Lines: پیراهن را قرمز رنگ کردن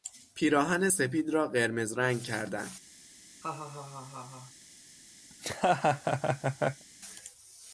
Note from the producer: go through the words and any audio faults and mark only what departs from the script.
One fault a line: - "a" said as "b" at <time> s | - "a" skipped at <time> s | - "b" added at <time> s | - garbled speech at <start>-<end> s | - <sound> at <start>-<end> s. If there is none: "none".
- "سپید" added at 0.9 s
- laugh at 3.4-4.5 s
- laugh at 5.3-6.8 s